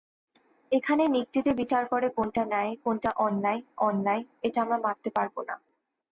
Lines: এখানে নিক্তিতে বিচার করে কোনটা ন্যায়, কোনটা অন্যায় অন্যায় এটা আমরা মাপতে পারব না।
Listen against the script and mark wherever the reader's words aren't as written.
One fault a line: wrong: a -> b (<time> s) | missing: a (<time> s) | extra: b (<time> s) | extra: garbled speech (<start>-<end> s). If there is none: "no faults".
no faults